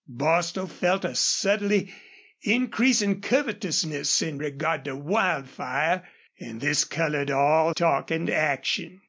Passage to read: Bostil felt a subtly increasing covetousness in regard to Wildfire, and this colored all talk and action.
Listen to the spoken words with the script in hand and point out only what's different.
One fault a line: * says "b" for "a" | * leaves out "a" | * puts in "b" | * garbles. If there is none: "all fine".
all fine